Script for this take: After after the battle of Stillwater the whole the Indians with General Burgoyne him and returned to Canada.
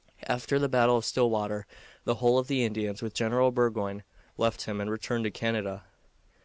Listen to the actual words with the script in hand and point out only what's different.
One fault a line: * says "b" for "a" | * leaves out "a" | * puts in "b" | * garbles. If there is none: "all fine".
* leaves out "after"
* puts in "of"
* puts in "left"